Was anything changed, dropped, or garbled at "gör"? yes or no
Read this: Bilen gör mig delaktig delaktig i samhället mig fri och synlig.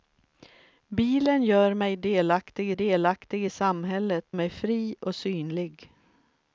no